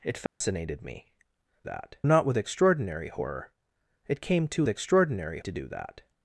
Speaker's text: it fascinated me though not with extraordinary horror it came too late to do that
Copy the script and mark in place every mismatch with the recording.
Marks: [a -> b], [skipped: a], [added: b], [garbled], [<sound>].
it fascinated [dropout] me [though -> that] not with extraordinary horror it came too [late -> extraordinary] to do that